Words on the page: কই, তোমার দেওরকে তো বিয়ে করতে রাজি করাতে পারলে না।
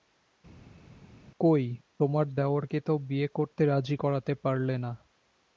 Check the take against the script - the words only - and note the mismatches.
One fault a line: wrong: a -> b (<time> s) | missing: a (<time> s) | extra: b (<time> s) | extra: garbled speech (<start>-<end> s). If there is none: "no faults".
no faults